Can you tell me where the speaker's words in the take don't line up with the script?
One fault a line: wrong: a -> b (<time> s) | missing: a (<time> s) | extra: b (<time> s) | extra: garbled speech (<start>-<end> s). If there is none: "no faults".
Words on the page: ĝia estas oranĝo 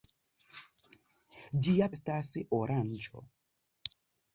no faults